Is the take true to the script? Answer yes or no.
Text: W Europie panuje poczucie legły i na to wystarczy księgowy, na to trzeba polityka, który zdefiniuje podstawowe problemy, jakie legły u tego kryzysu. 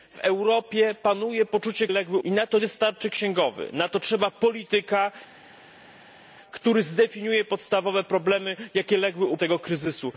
yes